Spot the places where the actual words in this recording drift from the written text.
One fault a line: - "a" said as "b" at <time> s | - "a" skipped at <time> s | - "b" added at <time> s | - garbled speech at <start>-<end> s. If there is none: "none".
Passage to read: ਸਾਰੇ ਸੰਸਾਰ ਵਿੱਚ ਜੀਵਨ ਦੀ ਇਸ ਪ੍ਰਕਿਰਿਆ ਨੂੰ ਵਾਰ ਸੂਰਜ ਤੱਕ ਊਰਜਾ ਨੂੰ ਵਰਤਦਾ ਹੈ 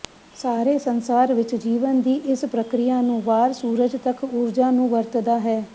none